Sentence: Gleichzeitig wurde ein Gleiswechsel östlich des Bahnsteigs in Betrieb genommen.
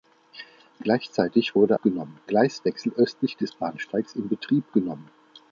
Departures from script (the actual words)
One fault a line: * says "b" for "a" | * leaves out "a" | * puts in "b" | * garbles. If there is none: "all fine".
* says "genommen" for "ein"